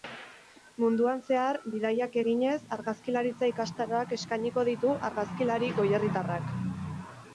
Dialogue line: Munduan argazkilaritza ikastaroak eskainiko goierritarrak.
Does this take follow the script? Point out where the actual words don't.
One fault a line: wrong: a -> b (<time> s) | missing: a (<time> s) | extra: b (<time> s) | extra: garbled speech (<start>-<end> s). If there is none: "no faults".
extra: zehar bidaiak eginez (1.2 s)
extra: ditu argazkilari (4.7 s)